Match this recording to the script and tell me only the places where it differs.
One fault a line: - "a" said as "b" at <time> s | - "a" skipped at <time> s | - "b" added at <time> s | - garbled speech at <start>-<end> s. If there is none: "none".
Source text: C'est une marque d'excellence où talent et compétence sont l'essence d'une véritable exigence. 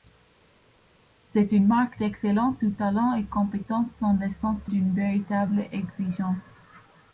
none